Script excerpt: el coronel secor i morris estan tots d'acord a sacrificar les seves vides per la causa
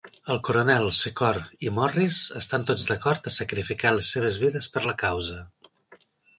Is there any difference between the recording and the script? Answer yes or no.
no